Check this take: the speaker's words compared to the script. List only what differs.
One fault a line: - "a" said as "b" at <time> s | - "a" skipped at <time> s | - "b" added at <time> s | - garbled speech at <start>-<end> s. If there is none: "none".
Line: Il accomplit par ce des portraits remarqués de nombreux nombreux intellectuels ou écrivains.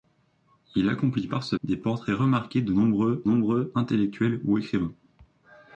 none